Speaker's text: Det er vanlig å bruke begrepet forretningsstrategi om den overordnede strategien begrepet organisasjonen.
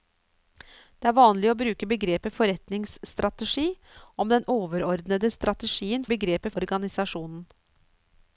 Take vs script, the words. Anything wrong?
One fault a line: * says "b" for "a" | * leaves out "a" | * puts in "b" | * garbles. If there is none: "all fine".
all fine